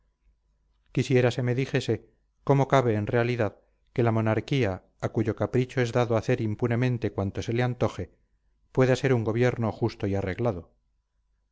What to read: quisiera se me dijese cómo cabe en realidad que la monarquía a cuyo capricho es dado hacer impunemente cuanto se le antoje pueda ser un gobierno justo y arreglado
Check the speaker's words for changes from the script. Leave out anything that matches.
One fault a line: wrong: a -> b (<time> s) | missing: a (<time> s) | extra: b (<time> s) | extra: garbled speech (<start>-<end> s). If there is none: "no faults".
no faults